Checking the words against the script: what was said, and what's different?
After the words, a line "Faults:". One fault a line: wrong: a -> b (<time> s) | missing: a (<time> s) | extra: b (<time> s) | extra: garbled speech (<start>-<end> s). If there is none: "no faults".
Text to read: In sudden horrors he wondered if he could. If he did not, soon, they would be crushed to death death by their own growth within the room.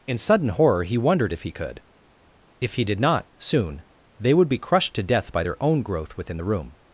In sudden horror he wondered if he could. If he did not, soon, they would be crushed to death by their own growth within the room.
Faults:
wrong: horrors -> horror (0.5 s)
missing: death (5.3 s)